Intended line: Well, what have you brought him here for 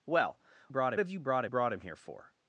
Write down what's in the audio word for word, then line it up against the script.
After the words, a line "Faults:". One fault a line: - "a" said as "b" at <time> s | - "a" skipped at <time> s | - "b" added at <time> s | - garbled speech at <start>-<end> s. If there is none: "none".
Well, brought have you brought brought him here for
Faults:
- "what" said as "brought" at 0.7 s
- "brought" added at 1.5 s